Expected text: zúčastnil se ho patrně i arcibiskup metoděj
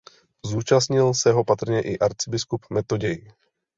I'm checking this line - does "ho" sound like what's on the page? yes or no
yes